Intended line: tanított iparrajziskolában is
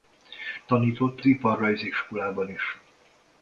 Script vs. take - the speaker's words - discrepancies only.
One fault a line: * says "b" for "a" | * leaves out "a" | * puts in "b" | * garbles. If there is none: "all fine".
all fine